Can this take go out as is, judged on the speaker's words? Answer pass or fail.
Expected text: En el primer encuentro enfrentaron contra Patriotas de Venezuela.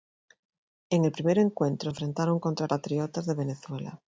pass